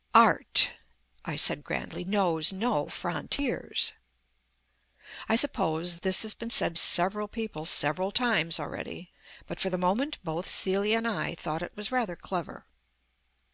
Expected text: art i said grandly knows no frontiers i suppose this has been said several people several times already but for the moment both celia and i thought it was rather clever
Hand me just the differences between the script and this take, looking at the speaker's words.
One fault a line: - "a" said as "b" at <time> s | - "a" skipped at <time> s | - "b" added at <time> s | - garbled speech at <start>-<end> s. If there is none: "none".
none